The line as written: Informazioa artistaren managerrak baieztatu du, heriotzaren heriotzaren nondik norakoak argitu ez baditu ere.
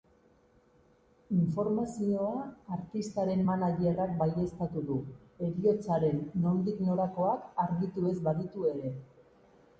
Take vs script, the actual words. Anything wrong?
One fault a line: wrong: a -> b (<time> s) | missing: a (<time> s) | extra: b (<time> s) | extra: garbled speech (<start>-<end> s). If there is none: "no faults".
missing: heriotzaren (6.2 s)